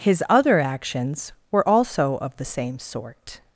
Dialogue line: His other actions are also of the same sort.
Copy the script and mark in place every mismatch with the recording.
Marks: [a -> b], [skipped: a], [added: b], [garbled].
His other actions [are -> were] also of the same sort.